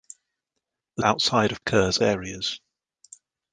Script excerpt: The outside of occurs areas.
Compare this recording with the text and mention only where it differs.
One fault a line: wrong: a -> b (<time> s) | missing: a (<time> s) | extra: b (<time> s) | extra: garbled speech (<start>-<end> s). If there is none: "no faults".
no faults